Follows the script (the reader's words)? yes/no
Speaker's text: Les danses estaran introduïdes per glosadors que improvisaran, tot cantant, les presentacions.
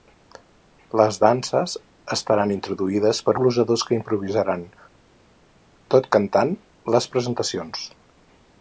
yes